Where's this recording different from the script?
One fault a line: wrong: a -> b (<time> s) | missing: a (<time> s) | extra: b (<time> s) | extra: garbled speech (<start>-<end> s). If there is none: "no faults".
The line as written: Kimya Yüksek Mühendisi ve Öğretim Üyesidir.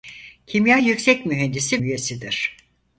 missing: ve Öğretim (1.8 s)